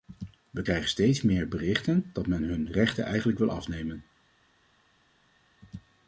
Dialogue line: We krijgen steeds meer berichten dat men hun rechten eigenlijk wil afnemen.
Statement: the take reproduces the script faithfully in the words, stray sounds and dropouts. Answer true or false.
true